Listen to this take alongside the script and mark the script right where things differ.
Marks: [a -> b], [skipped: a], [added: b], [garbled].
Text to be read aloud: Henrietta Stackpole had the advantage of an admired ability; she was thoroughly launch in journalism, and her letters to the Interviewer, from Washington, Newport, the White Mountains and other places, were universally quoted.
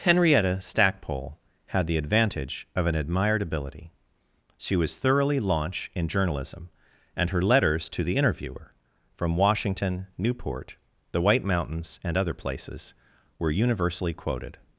Henrietta Stackpole had the advantage of an admired ability; she was thoroughly launch in journalism, and her letters to the Interviewer, from Washington, Newport, the White Mountains and other places, were universally quoted.